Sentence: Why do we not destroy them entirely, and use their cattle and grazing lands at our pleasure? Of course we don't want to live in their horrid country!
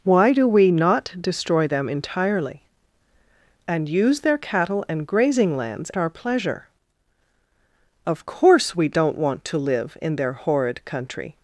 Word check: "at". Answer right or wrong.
wrong